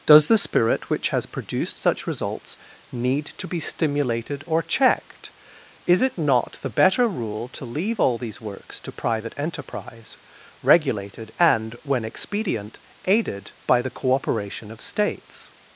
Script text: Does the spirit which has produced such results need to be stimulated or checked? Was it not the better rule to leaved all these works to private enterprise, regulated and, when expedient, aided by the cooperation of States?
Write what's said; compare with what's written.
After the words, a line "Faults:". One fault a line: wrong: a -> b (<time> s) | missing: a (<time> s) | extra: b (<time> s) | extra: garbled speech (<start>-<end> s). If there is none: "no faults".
Does the spirit which has produced such results need to be stimulated or checked? Is it not the better rule to leave all these works to private enterprise, regulated and, when expedient, aided by the cooperation of States?
Faults:
wrong: Was -> Is (5.8 s)
wrong: leaved -> leave (7.7 s)